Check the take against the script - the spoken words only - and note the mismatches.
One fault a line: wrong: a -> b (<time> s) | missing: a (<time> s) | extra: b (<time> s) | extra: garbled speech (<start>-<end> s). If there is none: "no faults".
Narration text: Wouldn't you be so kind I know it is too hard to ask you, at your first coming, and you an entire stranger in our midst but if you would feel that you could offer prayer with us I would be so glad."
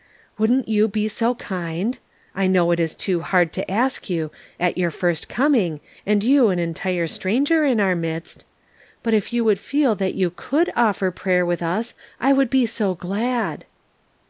no faults